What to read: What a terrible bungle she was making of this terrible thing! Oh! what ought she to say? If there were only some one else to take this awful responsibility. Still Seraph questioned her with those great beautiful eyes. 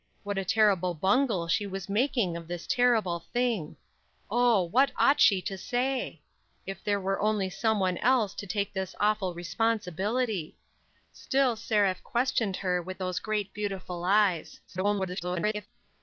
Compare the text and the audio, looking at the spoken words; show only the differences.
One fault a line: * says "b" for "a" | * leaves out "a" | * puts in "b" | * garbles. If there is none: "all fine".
* garbles